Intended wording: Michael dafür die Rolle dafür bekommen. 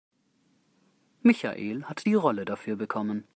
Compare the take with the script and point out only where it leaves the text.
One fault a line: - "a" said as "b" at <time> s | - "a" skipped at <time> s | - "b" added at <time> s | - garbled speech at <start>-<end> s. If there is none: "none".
- "dafür" said as "hat" at 1.8 s